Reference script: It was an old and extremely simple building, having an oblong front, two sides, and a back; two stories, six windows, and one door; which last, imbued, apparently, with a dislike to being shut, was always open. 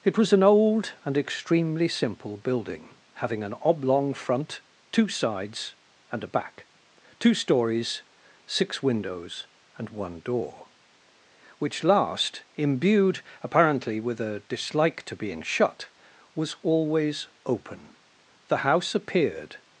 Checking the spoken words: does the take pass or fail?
fail